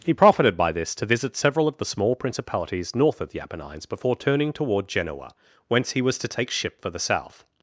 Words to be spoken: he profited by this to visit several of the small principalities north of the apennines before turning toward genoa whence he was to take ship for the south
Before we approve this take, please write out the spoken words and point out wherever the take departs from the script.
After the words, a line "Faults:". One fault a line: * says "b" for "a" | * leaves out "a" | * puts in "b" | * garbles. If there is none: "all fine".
he profited by this to visit several of the small principalities north of the apennines before turning toward genoa whence he was to take ship for the south
Faults:
all fine